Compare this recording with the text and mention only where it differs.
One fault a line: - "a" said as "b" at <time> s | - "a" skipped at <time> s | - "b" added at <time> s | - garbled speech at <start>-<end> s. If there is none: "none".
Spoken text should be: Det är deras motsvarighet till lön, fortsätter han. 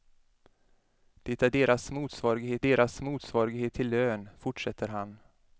- "deras motsvarighet" added at 2.6 s